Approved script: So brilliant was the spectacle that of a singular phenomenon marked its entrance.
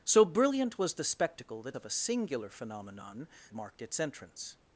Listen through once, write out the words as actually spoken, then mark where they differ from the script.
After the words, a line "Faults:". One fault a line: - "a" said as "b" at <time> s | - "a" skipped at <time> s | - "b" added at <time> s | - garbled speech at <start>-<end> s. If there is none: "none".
So brilliant was the spectacle that of a singular phenomenon marked its entrance.
Faults:
none